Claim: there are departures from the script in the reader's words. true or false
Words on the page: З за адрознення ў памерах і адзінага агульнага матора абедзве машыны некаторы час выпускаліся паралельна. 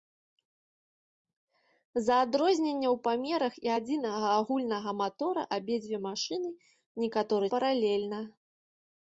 true